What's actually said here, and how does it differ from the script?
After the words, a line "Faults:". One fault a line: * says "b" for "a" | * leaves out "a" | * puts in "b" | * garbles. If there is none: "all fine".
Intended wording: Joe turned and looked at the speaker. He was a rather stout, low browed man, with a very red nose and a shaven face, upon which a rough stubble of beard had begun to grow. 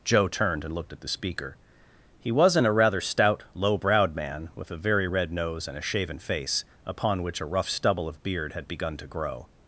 Joe turned and looked at the speaker. He wasn't a rather stout, low browed man, with a very red nose and a shaven face, upon which a rough stubble of beard had begun to grow.
Faults:
* says "wasn't" for "was"